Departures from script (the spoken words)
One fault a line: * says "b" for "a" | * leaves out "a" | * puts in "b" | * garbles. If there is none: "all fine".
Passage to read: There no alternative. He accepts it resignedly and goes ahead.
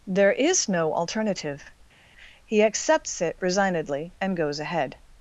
* puts in "is"